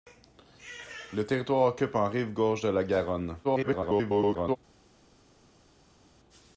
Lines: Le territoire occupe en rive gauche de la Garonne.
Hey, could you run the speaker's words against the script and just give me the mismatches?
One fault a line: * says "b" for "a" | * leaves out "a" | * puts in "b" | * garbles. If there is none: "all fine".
* garbles